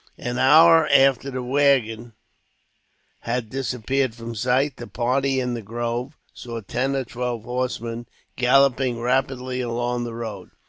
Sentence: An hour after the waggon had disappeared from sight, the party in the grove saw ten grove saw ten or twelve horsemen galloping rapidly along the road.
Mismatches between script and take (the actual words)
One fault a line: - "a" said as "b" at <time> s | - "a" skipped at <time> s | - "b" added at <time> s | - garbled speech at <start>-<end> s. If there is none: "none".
- "grove saw ten" skipped at 7.0 s